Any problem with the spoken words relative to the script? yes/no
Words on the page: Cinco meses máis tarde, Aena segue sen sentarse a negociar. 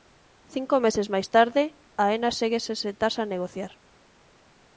no